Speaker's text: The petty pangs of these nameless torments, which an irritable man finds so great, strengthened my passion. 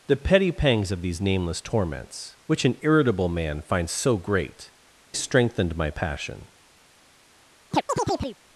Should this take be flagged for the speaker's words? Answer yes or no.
no